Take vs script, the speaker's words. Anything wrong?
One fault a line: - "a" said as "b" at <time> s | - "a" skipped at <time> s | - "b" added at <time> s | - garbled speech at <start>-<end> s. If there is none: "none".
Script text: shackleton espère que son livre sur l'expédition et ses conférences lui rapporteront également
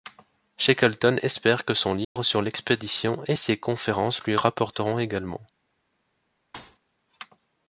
none